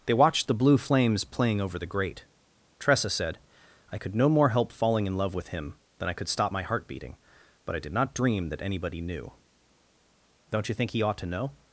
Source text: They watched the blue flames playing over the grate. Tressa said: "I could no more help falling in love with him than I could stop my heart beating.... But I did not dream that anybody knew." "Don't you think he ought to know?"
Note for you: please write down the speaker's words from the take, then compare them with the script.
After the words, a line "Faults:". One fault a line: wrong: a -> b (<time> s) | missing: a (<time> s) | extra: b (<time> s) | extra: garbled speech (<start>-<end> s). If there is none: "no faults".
They watched the blue flames playing over the grate. Tressa said: "I could no more help falling in love with him than I could stop my heart beating.... But I did not dream that anybody knew." "Don't you think he ought to know?"
Faults:
no faults